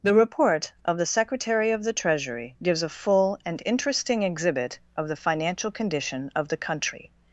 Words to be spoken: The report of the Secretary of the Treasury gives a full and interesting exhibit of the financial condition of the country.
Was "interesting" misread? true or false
false